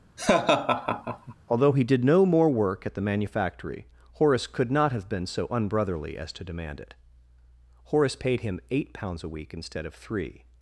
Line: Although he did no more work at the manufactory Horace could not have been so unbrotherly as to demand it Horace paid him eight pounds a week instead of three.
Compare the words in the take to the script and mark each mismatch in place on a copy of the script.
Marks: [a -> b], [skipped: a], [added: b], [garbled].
Although he did no more work at the manufactory Horace could not have been so unbrotherly as to demand it Horace paid him eight pounds a week instead of three.